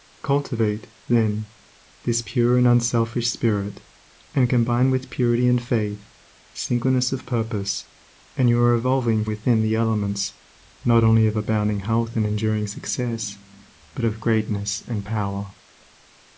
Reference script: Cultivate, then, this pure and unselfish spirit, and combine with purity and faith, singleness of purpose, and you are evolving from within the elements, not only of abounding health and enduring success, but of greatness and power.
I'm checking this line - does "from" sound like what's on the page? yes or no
no